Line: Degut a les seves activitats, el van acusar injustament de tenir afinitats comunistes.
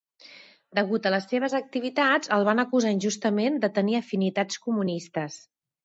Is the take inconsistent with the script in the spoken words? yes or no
no